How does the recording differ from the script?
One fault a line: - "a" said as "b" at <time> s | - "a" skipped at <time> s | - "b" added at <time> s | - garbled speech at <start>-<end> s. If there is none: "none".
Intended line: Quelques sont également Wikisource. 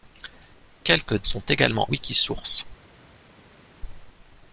none